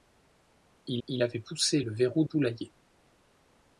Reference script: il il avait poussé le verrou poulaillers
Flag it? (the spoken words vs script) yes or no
no